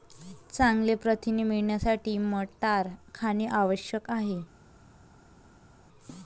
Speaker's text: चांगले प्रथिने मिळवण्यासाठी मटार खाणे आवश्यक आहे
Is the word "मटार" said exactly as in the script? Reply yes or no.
yes